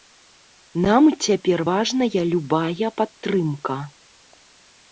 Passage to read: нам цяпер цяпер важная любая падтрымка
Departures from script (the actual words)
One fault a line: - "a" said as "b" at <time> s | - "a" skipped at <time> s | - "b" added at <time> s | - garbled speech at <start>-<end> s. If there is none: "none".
- "цяпер" skipped at 1.6 s